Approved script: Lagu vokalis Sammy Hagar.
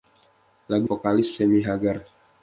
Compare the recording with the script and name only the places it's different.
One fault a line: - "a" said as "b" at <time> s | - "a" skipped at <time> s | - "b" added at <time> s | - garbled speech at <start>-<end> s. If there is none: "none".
none